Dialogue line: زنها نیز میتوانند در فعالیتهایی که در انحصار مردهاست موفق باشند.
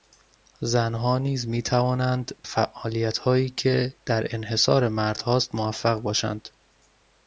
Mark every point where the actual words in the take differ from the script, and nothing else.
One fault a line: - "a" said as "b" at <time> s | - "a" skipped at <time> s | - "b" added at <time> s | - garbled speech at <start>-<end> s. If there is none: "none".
- "در" skipped at 2.4 s